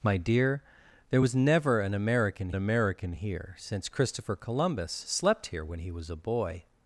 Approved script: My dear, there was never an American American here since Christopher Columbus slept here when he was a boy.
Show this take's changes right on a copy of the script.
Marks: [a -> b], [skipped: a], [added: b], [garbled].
My dear, there was never an American American here since Christopher Columbus slept here when he was a boy.